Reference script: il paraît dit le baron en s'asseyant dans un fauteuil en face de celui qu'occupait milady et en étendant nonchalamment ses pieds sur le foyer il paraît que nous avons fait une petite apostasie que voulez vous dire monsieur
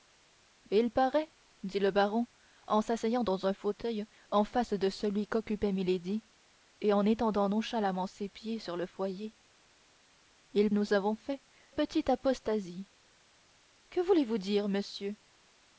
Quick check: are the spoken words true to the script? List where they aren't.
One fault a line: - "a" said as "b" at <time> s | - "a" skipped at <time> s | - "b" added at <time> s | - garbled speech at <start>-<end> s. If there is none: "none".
- "paraît que" skipped at 10.7 s
- "une" skipped at 11.4 s